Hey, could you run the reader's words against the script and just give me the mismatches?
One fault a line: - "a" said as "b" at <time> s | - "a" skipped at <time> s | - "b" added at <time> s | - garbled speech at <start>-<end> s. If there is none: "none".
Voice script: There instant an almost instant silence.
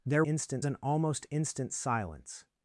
none